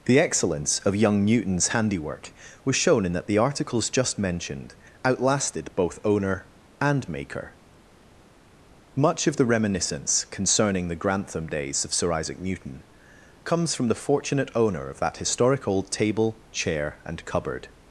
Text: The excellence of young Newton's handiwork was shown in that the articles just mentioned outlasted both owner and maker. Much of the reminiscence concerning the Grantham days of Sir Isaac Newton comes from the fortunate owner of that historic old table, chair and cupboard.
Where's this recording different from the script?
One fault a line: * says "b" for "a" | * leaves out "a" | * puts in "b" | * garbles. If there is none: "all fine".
all fine